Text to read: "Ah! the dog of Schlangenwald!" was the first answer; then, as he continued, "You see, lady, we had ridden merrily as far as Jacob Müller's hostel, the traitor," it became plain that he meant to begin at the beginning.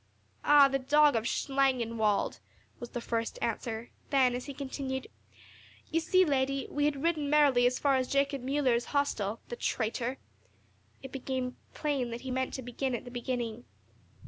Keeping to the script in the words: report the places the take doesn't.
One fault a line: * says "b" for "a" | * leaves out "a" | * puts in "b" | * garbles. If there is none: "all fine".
all fine